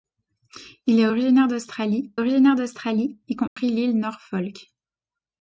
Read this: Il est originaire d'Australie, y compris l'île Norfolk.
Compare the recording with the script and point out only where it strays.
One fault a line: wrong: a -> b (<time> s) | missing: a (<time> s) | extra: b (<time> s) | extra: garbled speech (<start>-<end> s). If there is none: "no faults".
extra: originaire d'Australie (2.1 s)